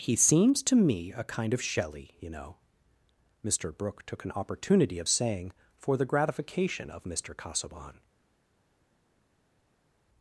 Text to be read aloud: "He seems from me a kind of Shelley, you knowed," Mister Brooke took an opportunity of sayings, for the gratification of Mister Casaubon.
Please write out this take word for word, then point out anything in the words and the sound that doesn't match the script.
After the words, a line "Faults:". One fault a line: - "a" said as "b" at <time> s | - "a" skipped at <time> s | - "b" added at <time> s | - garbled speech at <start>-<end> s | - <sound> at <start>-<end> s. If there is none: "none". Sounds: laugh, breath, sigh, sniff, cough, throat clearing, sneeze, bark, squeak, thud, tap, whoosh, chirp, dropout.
"He seems to me a kind of Shelley, you know," Mister Brooke took an opportunity of saying, for the gratification of Mister Casaubon.
Faults:
- "from" said as "to" at 0.6 s
- "knowed" said as "know" at 2.3 s
- "sayings" said as "saying" at 5.1 s